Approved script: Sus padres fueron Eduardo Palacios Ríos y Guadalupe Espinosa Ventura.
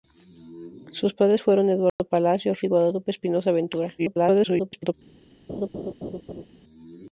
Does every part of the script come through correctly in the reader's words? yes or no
no